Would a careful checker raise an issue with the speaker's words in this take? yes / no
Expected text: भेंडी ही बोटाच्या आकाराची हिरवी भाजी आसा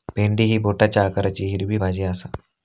no